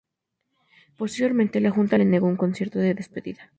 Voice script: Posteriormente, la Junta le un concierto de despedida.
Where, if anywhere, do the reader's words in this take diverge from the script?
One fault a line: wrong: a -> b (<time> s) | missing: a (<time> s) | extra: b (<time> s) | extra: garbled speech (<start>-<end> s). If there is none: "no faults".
extra: negó (2.1 s)